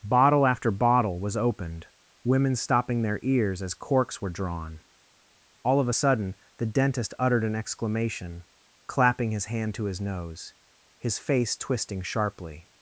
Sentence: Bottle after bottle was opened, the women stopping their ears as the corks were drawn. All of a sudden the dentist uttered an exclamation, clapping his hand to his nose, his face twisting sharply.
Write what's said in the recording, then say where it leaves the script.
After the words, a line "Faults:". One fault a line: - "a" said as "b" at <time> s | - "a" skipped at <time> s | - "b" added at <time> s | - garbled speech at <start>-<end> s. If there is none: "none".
Bottle after bottle was opened, women stopping their ears as corks were drawn. All of a sudden the dentist uttered an exclamation, clapping his hand to his nose, his face twisting sharply.
Faults:
- "the" skipped at 1.9 s
- "the" skipped at 3.7 s